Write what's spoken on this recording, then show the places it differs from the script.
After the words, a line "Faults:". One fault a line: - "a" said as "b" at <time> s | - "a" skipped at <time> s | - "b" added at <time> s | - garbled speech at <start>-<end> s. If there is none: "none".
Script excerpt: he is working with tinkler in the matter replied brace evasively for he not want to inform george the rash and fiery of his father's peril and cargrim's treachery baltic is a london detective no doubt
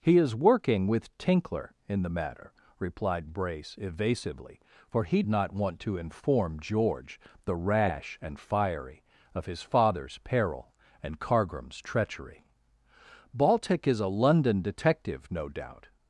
he is working with tinkler in the matter replied brace evasively for he not want to inform george the rash and fiery of his father's peril and cargrim's treachery baltic is a london detective no doubt
Faults:
none